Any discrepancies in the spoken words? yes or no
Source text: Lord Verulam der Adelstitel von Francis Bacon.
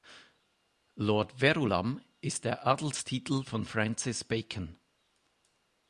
yes